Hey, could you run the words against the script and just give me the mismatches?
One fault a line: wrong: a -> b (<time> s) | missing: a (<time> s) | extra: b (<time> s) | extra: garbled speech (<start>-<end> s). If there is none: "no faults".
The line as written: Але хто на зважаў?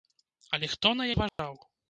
no faults